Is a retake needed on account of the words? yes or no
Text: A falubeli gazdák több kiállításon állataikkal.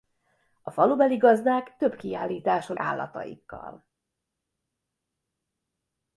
no